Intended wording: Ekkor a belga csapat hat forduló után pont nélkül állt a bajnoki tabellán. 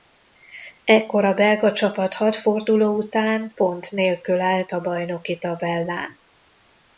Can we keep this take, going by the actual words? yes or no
yes